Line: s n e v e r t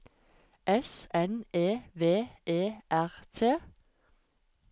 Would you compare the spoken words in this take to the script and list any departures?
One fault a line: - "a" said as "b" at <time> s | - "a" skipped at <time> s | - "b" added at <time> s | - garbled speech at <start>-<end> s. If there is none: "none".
none